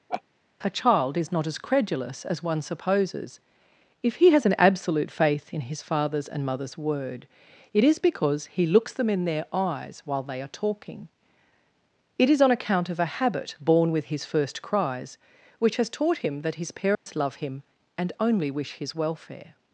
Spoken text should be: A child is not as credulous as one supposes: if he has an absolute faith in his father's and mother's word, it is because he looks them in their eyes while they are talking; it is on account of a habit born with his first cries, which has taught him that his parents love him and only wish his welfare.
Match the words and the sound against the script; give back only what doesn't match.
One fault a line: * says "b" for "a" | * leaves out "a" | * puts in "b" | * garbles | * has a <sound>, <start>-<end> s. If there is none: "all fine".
* has a laugh, 0.1-0.2 s
* has a dropout, 16.9-17.1 s